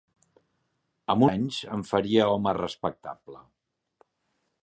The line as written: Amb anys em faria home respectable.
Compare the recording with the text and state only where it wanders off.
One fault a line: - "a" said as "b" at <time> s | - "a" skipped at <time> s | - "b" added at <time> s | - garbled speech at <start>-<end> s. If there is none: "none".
none